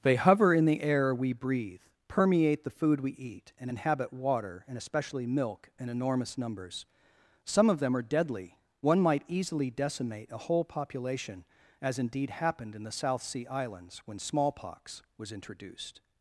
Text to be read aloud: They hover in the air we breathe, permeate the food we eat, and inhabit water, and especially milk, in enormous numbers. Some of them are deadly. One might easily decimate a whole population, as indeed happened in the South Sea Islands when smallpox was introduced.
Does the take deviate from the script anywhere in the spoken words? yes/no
no